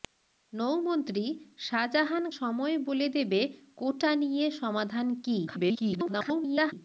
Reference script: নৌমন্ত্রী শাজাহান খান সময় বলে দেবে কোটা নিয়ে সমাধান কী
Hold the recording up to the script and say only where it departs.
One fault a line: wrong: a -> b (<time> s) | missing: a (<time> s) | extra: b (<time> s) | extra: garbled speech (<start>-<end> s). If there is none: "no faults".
missing: খান (2.2 s)
extra: garbled speech (5.5-6.7 s)